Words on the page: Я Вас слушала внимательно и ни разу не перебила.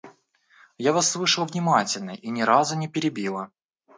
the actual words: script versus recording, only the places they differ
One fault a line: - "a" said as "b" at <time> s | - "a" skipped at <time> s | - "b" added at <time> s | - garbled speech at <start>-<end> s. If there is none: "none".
none